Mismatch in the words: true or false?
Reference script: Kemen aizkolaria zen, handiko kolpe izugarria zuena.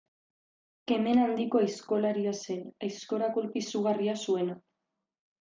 true